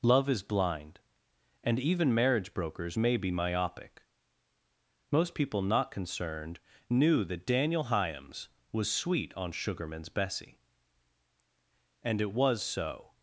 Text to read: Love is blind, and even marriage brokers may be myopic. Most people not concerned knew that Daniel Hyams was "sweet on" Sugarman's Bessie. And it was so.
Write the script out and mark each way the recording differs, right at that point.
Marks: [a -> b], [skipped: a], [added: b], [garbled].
Love is blind, and even marriage brokers may be myopic. Most people not concerned knew that Daniel Hyams was "sweet on" Sugarman's Bessie. And it was so.